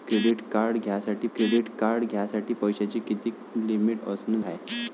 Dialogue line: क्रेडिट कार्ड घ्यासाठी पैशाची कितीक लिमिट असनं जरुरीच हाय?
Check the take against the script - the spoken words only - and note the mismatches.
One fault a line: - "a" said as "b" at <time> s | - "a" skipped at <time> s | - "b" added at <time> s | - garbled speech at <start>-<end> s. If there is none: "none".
- "क्रेडिट कार्ड घ्यासाठी" added at 1.3 s
- "जरुरीच" skipped at 4.4 s